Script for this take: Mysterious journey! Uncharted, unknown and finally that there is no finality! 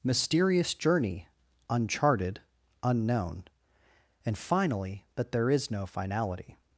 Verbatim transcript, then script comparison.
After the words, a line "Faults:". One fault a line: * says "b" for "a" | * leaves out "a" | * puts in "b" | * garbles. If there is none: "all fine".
Mysterious journey! Uncharted, unknown and finally that there is no finality!
Faults:
all fine